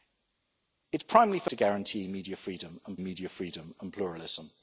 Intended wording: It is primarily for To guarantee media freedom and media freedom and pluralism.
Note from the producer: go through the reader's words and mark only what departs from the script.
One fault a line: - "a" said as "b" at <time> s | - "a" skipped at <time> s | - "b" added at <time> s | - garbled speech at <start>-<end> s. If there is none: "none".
none